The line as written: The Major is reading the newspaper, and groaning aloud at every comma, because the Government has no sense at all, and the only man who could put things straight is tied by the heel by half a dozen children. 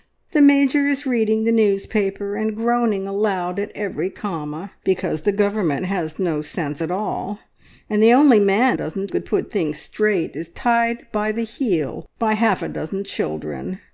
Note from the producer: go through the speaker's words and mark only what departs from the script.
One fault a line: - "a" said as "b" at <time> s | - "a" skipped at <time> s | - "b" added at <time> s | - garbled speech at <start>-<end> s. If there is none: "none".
- "who" said as "dozen" at 8.7 s